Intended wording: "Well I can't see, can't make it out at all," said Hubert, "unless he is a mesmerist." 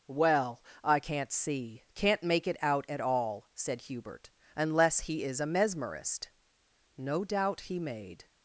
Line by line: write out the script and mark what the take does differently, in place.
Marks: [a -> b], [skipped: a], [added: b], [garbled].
"Well I can't see, can't make it out at all," said Hubert, "unless he is a mesmerist." [added: No doubt he made]